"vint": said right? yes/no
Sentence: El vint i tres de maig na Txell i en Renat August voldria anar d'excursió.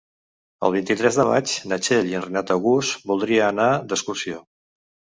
yes